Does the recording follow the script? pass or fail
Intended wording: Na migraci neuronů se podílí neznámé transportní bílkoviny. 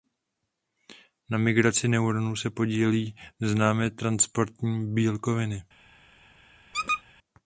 pass